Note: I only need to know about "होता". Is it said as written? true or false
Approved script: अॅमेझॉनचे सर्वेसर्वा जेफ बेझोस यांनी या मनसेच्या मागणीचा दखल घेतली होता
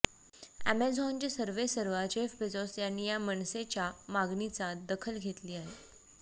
false